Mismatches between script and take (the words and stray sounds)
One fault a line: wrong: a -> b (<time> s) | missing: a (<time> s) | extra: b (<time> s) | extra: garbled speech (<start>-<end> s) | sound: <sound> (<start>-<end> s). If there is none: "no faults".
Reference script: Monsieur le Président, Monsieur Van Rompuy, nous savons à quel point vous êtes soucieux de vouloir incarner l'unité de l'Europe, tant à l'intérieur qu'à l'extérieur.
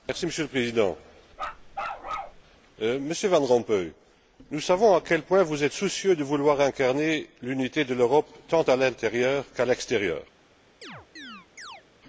sound: bark (1.3-2.4 s)
sound: chirp (10.8-11.8 s)